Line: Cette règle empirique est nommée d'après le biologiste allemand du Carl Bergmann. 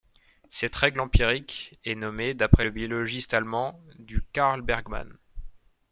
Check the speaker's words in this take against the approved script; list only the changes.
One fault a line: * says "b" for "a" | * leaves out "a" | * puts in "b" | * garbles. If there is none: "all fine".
all fine